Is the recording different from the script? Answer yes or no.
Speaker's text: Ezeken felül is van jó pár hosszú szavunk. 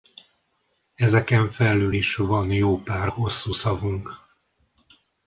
no